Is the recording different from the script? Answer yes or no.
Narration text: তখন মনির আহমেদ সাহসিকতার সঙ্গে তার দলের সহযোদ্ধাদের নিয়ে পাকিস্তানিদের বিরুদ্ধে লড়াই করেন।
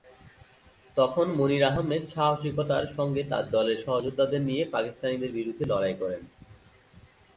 no